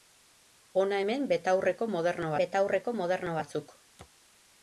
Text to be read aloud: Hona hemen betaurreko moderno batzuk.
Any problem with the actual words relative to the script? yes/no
yes